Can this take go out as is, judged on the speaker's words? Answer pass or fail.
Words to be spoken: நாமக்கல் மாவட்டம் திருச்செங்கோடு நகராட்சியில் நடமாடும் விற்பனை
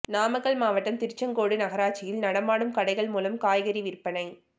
fail